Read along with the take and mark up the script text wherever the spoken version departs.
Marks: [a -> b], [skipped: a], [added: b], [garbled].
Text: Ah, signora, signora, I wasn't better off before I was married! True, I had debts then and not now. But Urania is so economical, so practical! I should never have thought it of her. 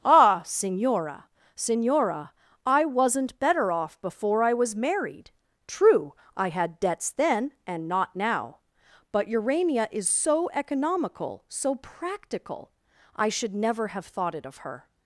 Ah, signora, signora, I wasn't better off before I was married! True, I had debts then and not now. But Urania is so economical, so practical! I should never have thought it of her.